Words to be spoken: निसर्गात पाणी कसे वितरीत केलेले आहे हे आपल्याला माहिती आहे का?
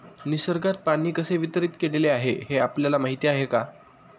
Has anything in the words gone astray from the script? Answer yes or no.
no